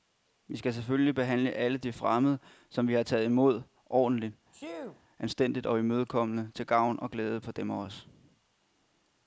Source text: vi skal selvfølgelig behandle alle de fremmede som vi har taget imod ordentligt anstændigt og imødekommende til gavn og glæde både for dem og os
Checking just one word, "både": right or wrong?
wrong